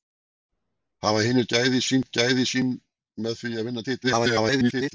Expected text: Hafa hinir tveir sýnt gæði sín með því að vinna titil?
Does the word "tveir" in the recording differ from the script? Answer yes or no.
yes